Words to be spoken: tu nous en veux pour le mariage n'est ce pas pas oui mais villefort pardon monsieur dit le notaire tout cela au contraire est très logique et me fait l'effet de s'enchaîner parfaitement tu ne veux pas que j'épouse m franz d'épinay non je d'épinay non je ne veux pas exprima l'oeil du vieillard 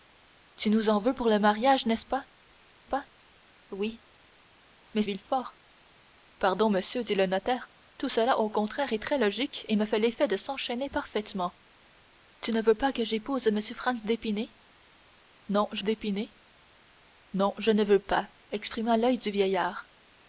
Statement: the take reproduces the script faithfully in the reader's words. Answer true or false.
true